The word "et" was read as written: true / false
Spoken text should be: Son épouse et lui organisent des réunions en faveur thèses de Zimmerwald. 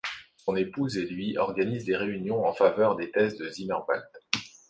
true